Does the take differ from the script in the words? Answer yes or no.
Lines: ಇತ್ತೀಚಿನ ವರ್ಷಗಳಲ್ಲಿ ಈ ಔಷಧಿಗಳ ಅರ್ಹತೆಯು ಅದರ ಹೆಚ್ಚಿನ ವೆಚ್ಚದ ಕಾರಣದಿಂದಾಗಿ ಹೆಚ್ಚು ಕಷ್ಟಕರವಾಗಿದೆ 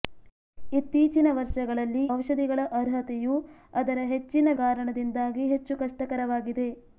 yes